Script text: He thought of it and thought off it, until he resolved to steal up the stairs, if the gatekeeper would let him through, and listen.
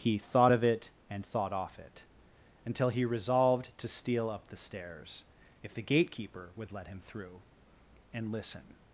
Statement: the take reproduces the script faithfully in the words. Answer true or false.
true